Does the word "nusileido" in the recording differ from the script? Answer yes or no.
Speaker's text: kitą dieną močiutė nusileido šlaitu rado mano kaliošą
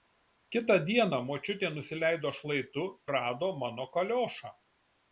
no